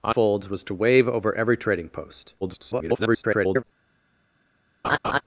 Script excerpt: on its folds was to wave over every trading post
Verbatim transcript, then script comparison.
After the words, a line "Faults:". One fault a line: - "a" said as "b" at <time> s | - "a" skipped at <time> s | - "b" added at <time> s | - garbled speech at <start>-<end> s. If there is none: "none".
on folds was to wave over every trading post [garbled]
Faults:
- "its" skipped at 0.1 s
- garbled speech at 2.4-3.6 s